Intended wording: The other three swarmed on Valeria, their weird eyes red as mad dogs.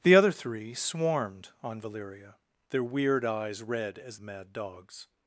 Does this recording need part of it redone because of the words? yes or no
no